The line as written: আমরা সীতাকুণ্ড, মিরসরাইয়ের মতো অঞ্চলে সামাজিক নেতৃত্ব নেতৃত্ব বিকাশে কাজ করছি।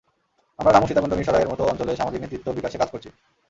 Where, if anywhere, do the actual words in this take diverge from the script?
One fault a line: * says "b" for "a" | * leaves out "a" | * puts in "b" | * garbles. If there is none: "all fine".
* puts in "রামু"
* leaves out "নেতৃত্ব"